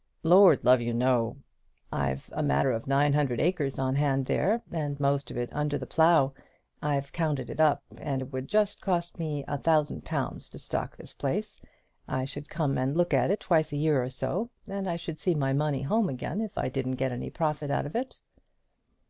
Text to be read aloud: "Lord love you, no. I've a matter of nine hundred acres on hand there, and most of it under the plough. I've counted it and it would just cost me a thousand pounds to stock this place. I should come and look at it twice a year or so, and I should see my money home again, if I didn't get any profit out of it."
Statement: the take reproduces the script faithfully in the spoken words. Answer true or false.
false